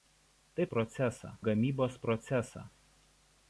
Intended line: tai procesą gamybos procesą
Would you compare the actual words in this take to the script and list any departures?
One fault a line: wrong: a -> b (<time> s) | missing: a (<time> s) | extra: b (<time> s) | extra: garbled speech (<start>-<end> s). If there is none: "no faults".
no faults